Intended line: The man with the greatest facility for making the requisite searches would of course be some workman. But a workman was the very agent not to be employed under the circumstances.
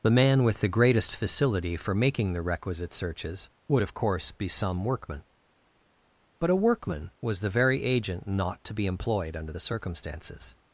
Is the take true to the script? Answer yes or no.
yes